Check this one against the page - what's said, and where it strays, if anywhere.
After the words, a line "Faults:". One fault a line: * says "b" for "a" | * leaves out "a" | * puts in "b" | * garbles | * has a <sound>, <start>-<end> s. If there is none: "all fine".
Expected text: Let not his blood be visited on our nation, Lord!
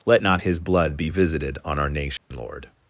Let not his blood be visited on our nation, Lord!
Faults:
* has a dropout, 2.2-2.3 s